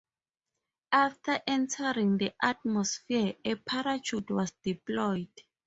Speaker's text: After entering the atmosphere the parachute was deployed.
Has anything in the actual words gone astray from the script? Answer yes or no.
yes